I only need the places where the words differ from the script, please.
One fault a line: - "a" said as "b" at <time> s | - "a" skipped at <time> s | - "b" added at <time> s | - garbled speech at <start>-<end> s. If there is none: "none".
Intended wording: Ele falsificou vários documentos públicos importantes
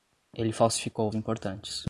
- "vários documentos públicos" skipped at 1.1 s